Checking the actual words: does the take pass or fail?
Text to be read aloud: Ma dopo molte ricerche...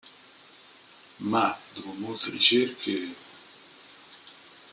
pass